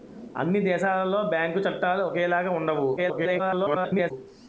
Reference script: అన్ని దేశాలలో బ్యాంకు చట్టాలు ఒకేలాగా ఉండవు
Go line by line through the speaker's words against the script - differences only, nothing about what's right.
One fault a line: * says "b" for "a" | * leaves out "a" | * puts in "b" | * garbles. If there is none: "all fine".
* garbles